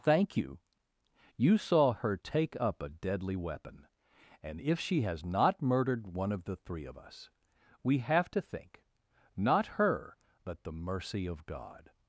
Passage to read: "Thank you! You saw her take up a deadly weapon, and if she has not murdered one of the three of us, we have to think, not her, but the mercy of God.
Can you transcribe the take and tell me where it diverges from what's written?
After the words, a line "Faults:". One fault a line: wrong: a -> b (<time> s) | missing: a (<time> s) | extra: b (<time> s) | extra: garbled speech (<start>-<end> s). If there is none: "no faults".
"Thank you! You saw her take up a deadly weapon, and if she has not murdered one of the three of us, we have to think, not her, but the mercy of God.
Faults:
no faults